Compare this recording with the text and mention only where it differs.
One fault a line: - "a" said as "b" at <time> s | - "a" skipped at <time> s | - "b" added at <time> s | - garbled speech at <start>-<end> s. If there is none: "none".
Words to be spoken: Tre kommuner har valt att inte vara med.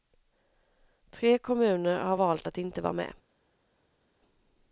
none